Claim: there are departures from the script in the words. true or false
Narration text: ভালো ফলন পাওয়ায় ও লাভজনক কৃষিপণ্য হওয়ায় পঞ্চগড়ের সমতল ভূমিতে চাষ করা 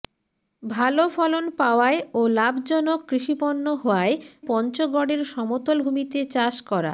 false